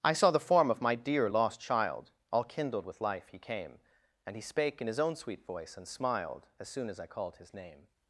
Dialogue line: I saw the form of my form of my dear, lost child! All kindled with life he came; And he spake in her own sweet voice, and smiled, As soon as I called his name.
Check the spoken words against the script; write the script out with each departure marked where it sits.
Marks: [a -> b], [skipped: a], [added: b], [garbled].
I saw the form of my [skipped: form of my] dear, lost child! All kindled with life he came; And he spake in [her -> his] own sweet voice, and smiled, As soon as I called his name.